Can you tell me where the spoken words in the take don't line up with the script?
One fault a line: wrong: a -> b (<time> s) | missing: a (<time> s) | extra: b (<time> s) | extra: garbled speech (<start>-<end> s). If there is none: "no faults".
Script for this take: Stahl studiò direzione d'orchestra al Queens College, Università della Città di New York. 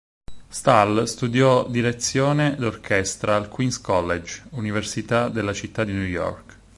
no faults